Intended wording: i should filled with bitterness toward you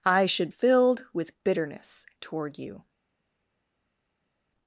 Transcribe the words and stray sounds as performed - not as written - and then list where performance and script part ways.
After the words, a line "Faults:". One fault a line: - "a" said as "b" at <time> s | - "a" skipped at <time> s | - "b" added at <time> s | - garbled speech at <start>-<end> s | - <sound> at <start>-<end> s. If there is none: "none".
i should filled with bitterness toward you
Faults:
none